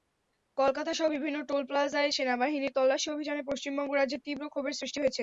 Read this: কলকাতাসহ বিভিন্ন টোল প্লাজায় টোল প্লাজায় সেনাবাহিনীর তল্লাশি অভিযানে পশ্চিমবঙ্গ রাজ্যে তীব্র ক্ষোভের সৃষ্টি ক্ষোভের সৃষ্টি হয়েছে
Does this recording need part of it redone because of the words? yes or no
yes